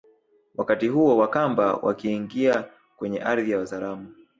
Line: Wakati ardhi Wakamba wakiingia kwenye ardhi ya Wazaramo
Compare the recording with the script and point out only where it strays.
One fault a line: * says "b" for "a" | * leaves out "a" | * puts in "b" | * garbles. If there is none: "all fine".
* says "huo" for "ardhi"